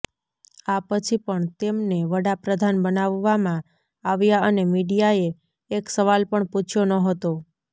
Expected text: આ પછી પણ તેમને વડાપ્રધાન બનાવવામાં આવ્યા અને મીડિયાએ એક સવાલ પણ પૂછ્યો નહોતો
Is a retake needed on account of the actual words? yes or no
no